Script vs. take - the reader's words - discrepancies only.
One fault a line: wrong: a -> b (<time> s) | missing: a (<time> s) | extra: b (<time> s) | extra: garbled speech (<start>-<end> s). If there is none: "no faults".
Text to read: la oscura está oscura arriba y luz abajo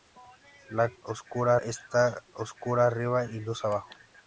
no faults